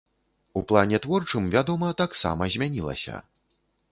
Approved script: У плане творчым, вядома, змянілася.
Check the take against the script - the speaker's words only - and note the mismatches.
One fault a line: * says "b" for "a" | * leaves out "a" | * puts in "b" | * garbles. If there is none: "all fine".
* puts in "таксама"